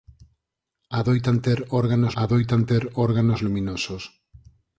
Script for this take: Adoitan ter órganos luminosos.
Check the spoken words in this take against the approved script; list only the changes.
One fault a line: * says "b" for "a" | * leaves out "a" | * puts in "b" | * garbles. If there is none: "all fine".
* puts in "adoitan ter órganos"